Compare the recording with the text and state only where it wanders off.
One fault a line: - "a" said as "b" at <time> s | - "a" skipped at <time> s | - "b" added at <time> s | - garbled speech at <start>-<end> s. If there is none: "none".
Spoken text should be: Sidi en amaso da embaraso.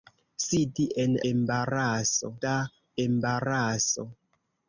- "amaso" said as "embaraso" at 1.3 s